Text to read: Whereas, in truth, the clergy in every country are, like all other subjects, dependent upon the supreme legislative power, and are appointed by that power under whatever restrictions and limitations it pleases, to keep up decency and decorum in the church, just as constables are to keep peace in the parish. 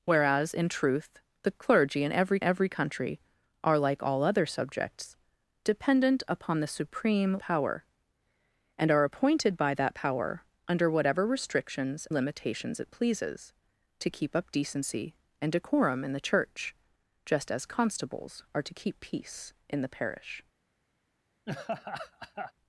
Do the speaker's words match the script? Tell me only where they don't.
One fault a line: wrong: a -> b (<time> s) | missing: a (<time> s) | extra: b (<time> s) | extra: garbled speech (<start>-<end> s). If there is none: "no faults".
extra: every (2.4 s)
missing: legislative (7.4 s)
missing: and (12.1 s)